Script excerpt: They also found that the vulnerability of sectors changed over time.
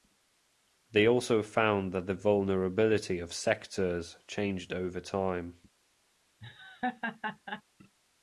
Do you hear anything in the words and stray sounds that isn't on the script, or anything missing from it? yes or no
yes